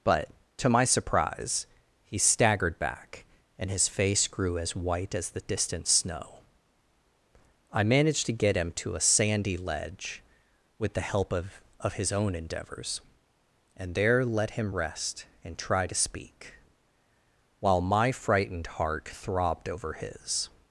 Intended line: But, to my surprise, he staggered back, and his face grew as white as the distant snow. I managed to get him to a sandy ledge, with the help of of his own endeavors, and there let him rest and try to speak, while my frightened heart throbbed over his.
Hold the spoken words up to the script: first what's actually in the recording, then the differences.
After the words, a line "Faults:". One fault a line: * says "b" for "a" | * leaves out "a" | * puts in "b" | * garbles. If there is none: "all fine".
But, to my surprise, he staggered back, and his face grew as white as the distant snow. I managed to get him to a sandy ledge, with the help of of his own endeavors, and there let him rest and try to speak, while my frightened heart throbbed over his.
Faults:
all fine